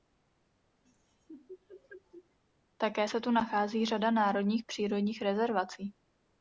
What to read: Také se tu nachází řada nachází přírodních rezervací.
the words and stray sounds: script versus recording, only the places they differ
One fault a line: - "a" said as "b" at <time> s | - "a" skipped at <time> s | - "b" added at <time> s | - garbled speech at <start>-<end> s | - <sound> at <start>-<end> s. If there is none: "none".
- laugh at 0.8-2.4 s
- "nachází" said as "národních" at 4.1 s